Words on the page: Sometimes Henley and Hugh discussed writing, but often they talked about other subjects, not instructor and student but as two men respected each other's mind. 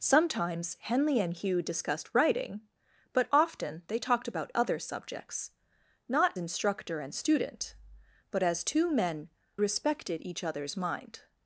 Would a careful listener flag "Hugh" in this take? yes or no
no